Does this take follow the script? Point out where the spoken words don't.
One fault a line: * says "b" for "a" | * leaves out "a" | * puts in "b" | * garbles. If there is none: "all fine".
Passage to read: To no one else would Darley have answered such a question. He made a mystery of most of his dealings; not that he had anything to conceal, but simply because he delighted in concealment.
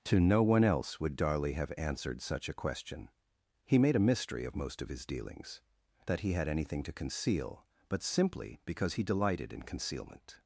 * leaves out "not"